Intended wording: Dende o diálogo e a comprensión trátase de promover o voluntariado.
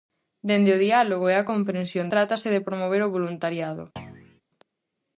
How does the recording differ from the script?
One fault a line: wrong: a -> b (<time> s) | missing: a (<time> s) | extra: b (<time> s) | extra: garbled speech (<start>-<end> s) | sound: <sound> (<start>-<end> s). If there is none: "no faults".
sound: thud (4.0-4.4 s)